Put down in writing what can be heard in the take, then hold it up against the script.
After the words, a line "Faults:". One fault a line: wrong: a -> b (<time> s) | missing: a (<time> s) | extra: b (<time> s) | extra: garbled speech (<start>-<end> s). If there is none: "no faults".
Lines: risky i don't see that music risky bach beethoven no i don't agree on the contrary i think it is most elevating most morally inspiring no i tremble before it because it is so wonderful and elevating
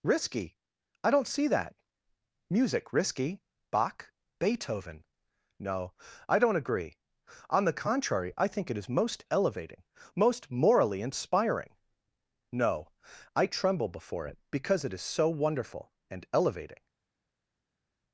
risky i don't see that music risky bach beethoven no i don't agree on the contrary i think it is most elevating most morally inspiring no i tremble before it because it is so wonderful and elevating
Faults:
no faults